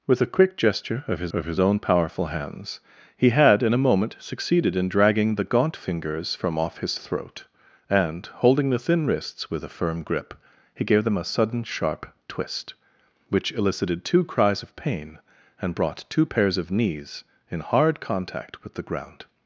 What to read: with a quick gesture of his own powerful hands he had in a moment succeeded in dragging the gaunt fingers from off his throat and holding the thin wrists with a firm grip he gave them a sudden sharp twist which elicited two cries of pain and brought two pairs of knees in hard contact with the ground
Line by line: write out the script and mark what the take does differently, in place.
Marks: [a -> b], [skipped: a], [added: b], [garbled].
with a quick gesture of his [added: of his] own powerful hands he had in a moment succeeded in dragging the gaunt fingers from off his throat and holding the thin wrists with a firm grip he gave them a sudden sharp twist which elicited two cries of pain and brought two pairs of knees in hard contact with the ground